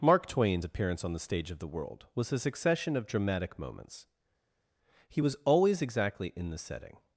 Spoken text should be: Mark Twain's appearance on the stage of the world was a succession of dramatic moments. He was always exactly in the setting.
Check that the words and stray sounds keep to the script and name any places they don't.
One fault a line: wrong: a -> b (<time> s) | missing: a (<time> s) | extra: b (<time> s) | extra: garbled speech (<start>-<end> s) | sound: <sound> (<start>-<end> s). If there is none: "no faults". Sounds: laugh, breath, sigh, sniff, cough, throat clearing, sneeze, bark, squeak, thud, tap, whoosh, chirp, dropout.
no faults